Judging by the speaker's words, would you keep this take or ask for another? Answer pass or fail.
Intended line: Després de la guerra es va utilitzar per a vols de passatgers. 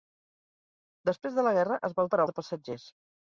fail